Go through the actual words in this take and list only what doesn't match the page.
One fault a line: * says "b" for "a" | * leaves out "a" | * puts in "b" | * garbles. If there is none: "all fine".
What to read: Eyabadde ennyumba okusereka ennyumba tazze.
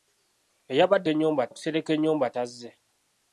all fine